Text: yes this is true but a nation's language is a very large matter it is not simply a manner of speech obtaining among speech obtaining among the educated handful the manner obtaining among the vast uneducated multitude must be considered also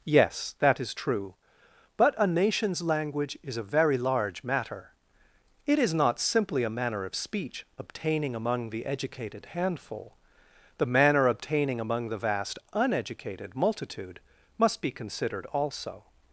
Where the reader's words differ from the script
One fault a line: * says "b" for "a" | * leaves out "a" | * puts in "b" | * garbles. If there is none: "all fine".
* says "that" for "this"
* leaves out "speech obtaining among"